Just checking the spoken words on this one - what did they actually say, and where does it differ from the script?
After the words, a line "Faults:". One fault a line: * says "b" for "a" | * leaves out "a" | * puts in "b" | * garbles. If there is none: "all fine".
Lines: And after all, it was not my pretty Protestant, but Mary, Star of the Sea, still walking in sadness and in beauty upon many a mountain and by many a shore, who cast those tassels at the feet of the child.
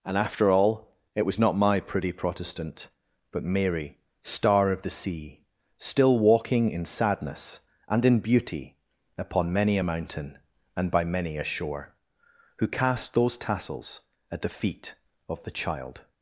And after all, it was not my pretty Protestant, but Mary, Star of the Sea, still walking in sadness and in beauty upon many a mountain and by many a shore, who cast those tassels at the feet of the child.
Faults:
all fine